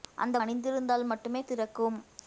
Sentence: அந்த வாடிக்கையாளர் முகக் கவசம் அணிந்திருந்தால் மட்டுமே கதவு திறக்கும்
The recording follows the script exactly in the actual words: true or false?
false